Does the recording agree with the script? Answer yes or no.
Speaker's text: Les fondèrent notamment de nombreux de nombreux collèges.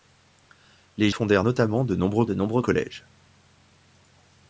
yes